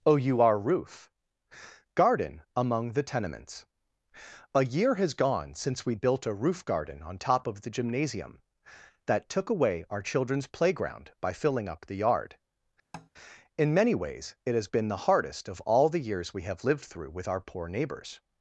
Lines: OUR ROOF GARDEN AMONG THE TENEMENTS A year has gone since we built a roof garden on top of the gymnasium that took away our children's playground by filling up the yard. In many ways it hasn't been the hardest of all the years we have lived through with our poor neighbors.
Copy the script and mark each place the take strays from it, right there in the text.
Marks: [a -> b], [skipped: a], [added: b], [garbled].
OUR ROOF GARDEN AMONG THE TENEMENTS A year has gone since we built a roof garden on top of the gymnasium that took away our children's playground by filling up the yard. In many ways it [hasn't -> has] been the hardest of all the years we have lived through with our poor neighbors.